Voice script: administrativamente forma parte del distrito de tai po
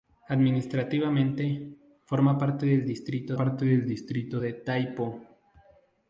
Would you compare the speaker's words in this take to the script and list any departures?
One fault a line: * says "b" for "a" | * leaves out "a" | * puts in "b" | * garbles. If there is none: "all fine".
* puts in "parte del distrito"